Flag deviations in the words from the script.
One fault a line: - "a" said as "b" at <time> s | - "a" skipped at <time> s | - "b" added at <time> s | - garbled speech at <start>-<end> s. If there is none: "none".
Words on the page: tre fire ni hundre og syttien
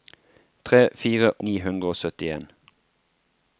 none